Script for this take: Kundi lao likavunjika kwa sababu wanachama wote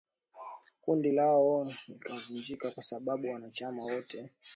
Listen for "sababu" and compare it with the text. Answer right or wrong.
right